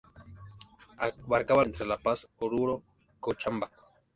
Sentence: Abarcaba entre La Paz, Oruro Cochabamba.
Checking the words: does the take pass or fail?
pass